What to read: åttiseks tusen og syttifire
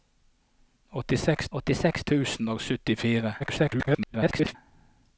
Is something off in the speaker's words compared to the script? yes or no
yes